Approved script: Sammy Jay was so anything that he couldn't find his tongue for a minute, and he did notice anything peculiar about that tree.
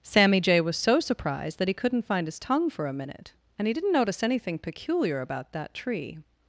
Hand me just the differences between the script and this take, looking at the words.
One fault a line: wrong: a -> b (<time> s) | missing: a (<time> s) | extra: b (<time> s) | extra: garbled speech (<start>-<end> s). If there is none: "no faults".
wrong: anything -> surprised (1.0 s)
wrong: did -> didn't (3.7 s)